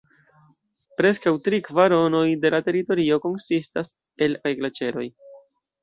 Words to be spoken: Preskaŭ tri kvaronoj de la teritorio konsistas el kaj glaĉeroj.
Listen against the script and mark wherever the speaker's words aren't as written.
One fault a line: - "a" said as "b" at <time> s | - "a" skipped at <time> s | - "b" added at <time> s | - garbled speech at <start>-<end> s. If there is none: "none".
none